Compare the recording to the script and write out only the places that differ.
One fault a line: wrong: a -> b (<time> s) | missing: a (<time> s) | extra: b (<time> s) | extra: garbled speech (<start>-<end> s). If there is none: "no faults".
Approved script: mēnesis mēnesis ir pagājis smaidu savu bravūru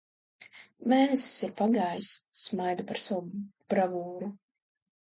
missing: mēnesis (1.4 s)
extra: par (2.9 s)